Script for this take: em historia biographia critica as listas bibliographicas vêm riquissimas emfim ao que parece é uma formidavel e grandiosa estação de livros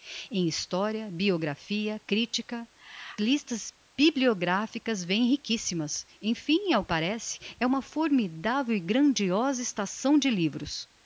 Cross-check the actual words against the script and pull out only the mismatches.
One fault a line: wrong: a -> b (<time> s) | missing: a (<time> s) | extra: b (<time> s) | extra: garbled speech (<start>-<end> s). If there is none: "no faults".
missing: as (2.7 s)
missing: que (6.8 s)